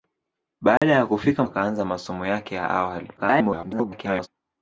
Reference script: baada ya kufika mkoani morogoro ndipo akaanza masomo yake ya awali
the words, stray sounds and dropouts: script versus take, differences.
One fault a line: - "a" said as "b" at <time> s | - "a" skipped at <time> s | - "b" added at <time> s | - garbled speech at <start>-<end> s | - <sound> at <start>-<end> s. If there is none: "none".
- dropout at 0.8-0.8 s
- "mkoani morogoro ndipo" skipped at 1.4 s
- garbled speech at 3.2-4.3 s